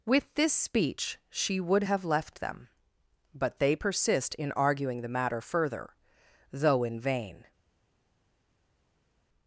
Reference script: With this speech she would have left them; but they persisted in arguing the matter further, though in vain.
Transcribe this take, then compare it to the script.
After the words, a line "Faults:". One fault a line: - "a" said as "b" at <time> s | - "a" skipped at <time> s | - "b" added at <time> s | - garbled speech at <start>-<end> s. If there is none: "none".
With this speech she would have left them; but they persist in arguing the matter further, though in vain.
Faults:
- "persisted" said as "persist" at 3.7 s